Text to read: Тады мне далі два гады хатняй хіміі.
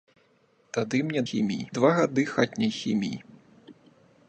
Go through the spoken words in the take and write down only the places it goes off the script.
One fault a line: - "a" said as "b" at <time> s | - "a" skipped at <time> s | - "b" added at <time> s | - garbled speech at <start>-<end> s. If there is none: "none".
- "далі" said as "хіміі" at 1.3 s